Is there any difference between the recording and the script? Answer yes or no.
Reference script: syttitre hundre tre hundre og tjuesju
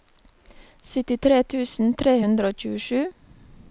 yes